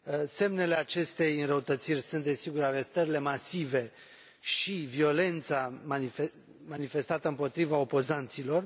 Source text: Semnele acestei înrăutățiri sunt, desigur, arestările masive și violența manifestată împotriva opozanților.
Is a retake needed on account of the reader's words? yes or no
no